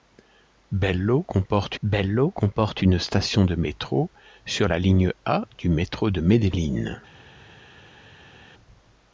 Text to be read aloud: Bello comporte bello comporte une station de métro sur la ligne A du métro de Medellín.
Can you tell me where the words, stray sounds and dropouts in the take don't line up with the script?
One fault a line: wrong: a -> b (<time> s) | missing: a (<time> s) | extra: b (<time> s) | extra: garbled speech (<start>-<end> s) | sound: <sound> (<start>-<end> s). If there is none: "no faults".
no faults